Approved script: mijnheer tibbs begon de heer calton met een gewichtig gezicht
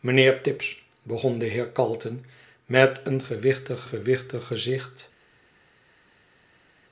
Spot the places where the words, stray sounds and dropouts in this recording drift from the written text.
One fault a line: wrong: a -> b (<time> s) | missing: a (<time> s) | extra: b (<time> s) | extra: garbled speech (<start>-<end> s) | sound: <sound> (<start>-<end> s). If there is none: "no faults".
extra: gewichtig (3.9 s)